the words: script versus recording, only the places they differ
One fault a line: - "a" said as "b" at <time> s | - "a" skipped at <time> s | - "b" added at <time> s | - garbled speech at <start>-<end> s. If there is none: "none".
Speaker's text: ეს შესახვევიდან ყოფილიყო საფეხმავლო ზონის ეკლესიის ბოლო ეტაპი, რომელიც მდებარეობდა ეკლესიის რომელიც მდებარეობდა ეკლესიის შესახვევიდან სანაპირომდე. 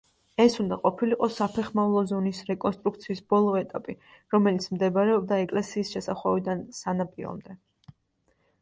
- "შესახვევიდან" said as "უნდა" at 0.6 s
- "ეკლესიის" said as "რეკონსტრუქციის" at 2.5 s
- "რომელიც მდებარეობდა ეკლესიის" skipped at 6.0 s